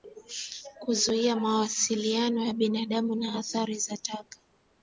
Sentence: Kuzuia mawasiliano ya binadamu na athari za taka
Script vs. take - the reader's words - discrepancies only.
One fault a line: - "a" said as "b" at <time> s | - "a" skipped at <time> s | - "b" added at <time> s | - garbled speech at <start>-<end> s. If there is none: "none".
none